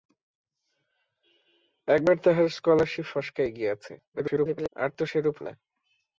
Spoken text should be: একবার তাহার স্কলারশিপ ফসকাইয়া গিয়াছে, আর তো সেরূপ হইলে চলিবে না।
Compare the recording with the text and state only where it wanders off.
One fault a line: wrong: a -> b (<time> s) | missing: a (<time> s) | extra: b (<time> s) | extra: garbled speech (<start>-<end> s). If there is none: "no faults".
extra: garbled speech (4.1-4.7 s)
missing: হইলে চলিবে (5.4 s)